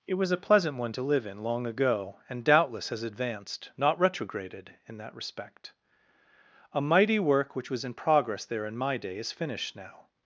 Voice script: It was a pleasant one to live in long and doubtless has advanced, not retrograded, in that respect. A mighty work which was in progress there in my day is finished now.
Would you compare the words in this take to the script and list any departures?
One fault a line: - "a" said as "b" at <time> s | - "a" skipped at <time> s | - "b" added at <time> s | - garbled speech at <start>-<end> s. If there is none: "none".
- "ago" added at 1.6 s